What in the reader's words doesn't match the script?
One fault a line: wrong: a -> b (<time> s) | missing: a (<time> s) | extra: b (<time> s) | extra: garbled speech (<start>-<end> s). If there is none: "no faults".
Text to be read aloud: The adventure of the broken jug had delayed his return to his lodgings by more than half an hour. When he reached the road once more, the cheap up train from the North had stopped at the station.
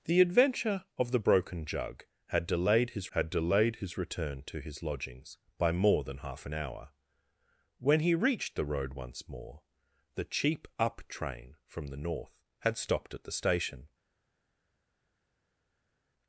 extra: had delayed his (3.1 s)